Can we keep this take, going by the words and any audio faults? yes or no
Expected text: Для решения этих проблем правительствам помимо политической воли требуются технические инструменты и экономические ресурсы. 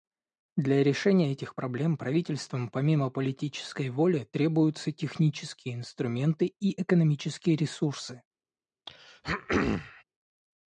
no